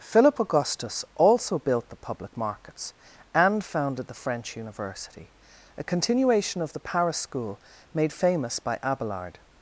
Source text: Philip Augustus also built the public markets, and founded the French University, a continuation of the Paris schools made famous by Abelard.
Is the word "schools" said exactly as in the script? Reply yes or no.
no